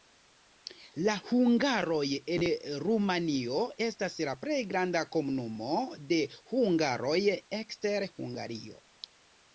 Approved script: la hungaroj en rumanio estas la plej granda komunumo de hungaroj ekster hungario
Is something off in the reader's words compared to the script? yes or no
no